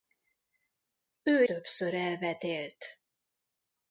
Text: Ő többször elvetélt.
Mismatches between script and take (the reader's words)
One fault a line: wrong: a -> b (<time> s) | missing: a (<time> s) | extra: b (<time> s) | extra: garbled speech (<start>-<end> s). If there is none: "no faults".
no faults